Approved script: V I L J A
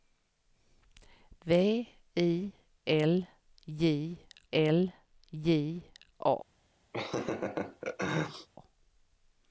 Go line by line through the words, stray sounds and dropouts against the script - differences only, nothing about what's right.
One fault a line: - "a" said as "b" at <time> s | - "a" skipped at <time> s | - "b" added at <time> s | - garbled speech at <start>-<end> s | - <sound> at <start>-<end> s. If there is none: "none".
- "L J" added at 4.5 s
- laugh at 6.9-8.5 s